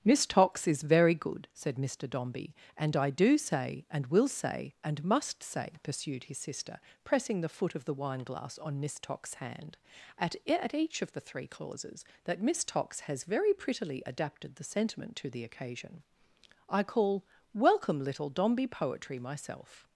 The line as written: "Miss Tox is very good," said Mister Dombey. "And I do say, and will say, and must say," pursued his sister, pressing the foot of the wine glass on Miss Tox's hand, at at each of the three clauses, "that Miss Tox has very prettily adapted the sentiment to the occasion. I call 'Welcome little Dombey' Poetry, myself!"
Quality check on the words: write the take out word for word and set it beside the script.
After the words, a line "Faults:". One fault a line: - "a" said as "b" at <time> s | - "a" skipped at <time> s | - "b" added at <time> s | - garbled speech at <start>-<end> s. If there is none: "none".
"Miss Tox is very good," said Mister Dombey. "And I do say, and will say, and must say," pursued his sister, pressing the foot of the wine glass on Miss Tox's hand, at at each of the three clauses, "that Miss Tox has very prettily adapted the sentiment to the occasion. I call 'Welcome little Dombey' Poetry, myself!"
Faults:
none